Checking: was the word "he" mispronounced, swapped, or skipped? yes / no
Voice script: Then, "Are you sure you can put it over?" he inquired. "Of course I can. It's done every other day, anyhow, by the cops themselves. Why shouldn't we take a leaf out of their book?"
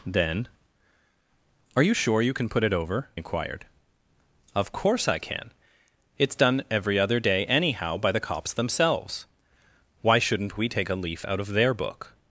yes